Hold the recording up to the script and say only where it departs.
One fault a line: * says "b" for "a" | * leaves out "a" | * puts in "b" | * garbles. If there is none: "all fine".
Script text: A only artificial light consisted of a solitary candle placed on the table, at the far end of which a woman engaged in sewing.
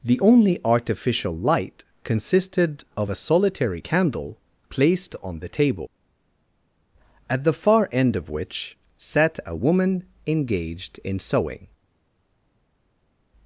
* says "The" for "A"
* puts in "sat"